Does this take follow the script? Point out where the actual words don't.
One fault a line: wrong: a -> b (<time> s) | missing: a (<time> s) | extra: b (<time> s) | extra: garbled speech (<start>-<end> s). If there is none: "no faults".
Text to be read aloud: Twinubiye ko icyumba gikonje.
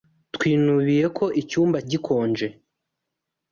no faults